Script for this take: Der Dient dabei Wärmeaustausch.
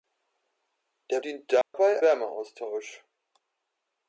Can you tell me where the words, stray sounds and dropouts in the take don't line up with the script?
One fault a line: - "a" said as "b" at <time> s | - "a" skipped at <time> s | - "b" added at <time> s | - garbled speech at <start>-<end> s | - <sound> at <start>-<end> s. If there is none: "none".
- dropout at 1.6-1.7 s